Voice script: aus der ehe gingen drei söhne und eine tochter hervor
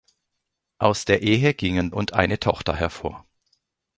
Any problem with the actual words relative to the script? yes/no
yes